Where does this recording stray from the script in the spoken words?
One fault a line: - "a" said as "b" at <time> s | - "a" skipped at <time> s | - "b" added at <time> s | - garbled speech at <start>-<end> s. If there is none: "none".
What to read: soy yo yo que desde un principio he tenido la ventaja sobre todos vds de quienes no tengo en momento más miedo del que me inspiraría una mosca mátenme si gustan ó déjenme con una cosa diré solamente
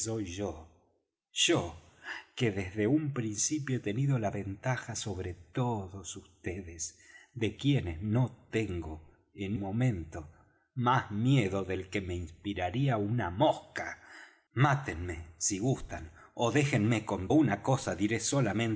none